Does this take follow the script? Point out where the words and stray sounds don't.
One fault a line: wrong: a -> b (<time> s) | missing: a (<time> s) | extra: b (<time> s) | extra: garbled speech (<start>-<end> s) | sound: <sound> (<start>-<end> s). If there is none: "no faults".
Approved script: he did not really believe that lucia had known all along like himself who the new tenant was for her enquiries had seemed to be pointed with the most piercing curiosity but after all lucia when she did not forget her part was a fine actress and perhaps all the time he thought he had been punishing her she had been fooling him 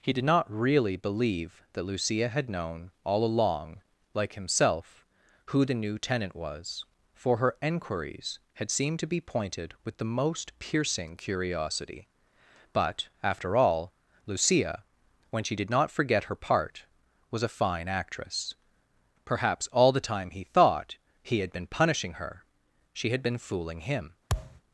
missing: and (18.6 s)
sound: thud (24.3-24.6 s)